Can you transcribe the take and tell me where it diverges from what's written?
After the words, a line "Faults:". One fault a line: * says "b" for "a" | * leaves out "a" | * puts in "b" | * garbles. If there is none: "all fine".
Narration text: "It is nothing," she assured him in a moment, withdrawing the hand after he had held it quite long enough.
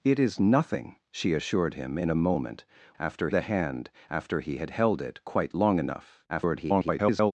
"It is nothing," she assured him in a moment, after the hand after he had held it quite long enough. [garbled]
Faults:
* says "after" for "withdrawing"
* garbles